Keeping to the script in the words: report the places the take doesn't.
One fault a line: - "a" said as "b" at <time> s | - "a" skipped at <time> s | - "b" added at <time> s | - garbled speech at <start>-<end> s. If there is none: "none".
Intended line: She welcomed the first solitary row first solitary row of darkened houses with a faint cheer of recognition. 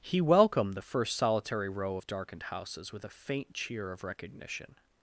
- "She" said as "He" at 0.0 s
- "first solitary row" skipped at 2.0 s